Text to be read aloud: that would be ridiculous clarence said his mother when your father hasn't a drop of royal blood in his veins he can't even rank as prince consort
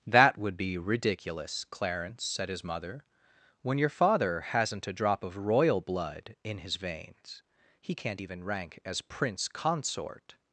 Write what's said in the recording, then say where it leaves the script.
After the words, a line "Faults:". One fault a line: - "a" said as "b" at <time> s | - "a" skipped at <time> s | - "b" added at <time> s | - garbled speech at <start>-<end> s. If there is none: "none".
that would be ridiculous clarence said his mother when your father hasn't a drop of royal blood in his veins he can't even rank as prince consort
Faults:
none